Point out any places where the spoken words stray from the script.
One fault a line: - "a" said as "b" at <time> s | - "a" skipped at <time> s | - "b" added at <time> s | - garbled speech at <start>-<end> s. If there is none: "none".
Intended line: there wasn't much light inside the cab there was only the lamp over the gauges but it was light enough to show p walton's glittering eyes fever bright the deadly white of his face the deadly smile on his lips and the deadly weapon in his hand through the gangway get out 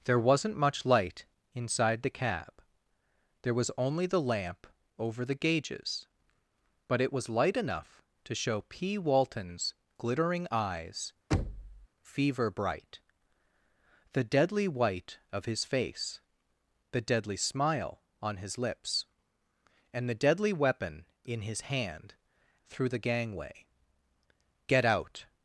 none